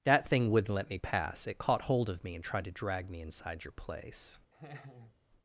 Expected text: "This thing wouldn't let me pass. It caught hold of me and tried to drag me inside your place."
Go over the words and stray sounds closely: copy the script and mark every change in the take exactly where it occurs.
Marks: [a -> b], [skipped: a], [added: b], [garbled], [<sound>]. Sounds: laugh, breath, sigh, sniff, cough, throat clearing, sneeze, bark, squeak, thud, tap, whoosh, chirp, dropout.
["This -> That] thing wouldn't let me pass. It caught hold of me and tried to drag me inside your place." [laugh]